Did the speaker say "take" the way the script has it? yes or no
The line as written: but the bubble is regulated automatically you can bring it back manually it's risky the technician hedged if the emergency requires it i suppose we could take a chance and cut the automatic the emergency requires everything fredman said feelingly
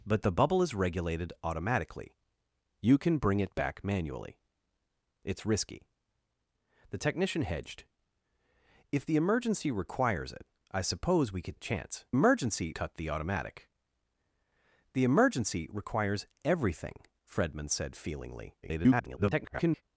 no